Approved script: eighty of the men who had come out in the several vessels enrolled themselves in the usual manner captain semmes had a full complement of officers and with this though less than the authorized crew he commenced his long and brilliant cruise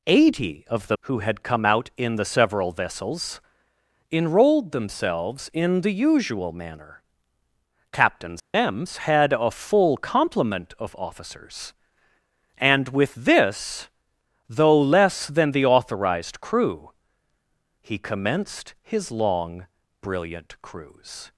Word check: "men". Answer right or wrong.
wrong